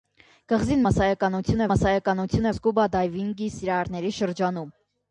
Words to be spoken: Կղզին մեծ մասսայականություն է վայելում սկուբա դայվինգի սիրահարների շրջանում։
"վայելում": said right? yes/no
no